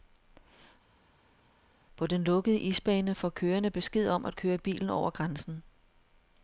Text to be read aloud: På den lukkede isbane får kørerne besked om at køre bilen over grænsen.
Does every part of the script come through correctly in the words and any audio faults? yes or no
yes